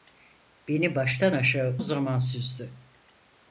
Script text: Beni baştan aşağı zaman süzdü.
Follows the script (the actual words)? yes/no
yes